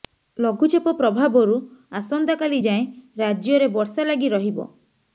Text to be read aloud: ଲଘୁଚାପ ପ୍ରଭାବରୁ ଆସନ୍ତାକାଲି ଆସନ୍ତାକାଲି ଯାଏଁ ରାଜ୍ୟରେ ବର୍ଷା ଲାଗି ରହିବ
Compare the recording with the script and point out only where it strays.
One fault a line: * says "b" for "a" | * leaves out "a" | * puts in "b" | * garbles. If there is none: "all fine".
* leaves out "ଆସନ୍ତାକାଲି"